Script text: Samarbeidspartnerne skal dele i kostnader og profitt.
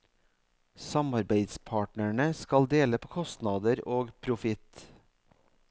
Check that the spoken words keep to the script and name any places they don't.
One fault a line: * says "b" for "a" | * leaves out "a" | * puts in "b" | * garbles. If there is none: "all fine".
* says "på" for "i"